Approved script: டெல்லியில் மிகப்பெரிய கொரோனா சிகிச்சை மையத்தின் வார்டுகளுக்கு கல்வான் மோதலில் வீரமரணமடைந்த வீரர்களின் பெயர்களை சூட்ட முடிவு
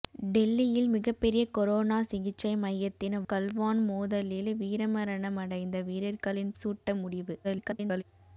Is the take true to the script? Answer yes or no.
no